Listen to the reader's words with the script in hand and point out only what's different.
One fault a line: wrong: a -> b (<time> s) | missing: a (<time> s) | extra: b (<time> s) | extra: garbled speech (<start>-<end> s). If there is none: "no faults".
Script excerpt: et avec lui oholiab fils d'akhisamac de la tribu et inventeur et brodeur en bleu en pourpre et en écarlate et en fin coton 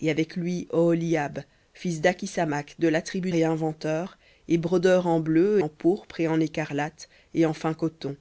no faults